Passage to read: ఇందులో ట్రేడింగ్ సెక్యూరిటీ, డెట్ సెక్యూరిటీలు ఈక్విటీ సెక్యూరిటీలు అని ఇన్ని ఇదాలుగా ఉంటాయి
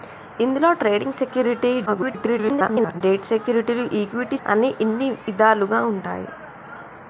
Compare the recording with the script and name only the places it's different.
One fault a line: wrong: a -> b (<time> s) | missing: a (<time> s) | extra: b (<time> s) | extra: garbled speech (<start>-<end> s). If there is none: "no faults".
extra: garbled speech (1.9-3.0 s)
missing: సెక్యూరిటీలు (4.4 s)